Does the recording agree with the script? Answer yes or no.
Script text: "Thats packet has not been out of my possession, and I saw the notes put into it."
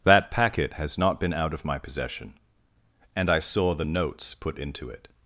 no